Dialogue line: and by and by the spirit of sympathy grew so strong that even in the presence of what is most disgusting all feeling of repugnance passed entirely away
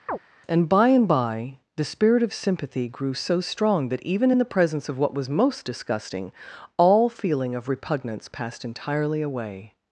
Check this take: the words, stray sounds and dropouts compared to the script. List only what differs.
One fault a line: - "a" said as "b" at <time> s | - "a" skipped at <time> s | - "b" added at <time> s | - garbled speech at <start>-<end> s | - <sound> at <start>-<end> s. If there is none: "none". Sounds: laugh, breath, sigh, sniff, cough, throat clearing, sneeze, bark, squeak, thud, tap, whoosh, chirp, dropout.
- chirp at 0.1-0.2 s
- "is" said as "was" at 5.1 s